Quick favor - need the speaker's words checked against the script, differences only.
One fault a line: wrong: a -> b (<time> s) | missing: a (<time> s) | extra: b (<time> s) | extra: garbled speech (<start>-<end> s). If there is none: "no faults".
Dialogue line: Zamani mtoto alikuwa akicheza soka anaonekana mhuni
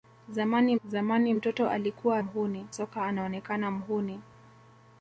extra: zamani (0.8 s)
wrong: akicheza -> mhuni (2.2 s)